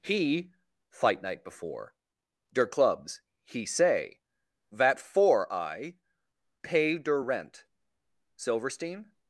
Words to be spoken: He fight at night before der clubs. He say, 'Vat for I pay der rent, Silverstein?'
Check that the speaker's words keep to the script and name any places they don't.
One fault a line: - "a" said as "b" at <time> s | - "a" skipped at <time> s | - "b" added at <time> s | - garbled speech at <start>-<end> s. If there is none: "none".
- "at" skipped at 1.2 s